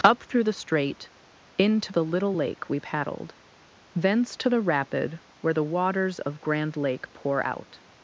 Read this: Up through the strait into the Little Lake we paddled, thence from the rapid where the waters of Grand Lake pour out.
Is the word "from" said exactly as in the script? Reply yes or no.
no